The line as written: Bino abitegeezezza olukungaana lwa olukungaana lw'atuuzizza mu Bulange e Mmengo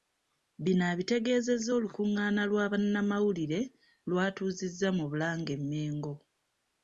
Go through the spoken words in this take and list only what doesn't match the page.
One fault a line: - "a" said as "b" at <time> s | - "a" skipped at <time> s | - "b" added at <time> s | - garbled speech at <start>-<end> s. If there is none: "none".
- "olukungaana" said as "bannamawulire" at 2.7 s